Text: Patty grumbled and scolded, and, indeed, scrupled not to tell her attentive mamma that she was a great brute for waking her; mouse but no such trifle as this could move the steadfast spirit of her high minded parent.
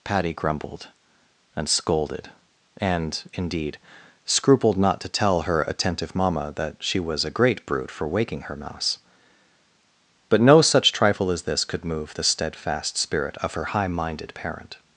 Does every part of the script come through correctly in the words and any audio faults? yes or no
yes